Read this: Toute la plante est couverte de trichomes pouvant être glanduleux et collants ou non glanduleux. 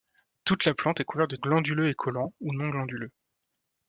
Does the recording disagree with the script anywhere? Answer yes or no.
yes